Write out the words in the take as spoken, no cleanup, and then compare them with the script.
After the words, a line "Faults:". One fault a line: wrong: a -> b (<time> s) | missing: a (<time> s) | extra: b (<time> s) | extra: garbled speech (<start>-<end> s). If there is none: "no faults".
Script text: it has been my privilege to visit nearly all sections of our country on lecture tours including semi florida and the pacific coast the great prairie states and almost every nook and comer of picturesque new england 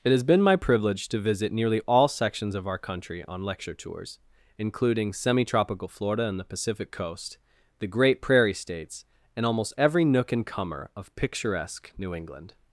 it has been my privilege to visit nearly all sections of our country on lecture tours including semi tropical florida and the pacific coast the great prairie states and almost every nook and comer of picturesque new england
Faults:
extra: tropical (5.4 s)